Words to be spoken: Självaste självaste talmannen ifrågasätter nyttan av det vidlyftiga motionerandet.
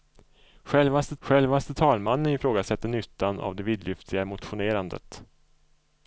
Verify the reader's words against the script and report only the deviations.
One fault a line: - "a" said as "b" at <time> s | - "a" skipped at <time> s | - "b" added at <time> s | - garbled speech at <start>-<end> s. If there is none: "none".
none